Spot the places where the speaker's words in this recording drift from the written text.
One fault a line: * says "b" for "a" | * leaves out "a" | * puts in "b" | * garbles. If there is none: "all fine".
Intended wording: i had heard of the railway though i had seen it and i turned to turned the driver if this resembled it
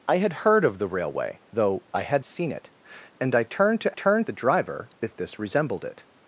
all fine